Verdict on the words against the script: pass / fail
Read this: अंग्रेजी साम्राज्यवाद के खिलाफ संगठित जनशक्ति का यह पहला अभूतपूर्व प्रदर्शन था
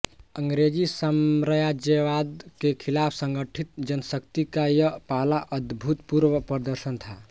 pass